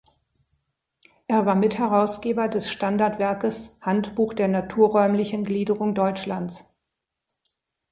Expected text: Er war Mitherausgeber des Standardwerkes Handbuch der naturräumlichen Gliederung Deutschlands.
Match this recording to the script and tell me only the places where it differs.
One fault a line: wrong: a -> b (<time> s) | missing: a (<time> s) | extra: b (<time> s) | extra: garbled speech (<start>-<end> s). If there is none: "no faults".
no faults